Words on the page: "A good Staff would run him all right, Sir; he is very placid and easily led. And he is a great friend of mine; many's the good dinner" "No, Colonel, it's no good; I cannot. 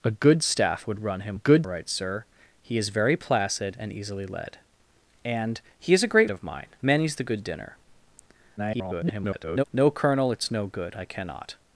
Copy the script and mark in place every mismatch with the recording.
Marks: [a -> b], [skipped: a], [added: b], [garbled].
"A good Staff would run him [all -> good] right, Sir; he is very placid and easily led. And he is a great [skipped: friend] of mine; many's the good dinner" [garbled] "No, Colonel, it's no good; I cannot.